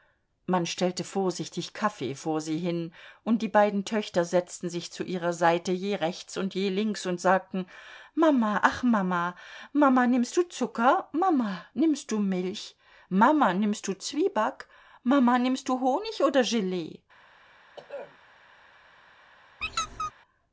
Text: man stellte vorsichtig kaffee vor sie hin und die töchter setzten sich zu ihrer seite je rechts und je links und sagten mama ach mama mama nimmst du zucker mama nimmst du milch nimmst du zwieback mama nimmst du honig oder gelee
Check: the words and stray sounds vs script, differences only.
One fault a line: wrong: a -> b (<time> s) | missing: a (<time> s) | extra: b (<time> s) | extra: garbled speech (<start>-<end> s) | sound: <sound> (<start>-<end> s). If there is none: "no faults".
extra: beiden (3.5 s)
extra: mama (13.1 s)
sound: throat clearing (17.8-18.2 s)
sound: squeak (19.6-20.1 s)